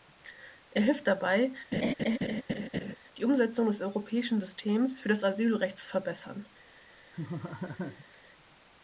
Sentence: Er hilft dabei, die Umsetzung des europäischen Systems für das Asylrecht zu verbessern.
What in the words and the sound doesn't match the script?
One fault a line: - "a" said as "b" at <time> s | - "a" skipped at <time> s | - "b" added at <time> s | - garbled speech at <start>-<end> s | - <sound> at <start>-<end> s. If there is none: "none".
- laugh at 1.7-3.0 s
- laugh at 7.1-8.2 s